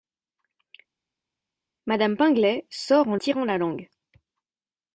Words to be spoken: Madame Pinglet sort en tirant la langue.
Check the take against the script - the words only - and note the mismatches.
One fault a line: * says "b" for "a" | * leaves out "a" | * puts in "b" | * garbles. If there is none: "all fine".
all fine